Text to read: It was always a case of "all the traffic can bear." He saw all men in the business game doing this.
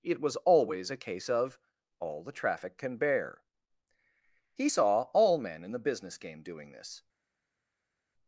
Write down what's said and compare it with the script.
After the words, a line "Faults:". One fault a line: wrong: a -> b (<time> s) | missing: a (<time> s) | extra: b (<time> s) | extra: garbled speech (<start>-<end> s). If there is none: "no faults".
It was always a case of "all the traffic can bear." He saw all men in the business game doing this.
Faults:
no faults